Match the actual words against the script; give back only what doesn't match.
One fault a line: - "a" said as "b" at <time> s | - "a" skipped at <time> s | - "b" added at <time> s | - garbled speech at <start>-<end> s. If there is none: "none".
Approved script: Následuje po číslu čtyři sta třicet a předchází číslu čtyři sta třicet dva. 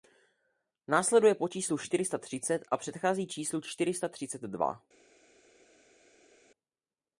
none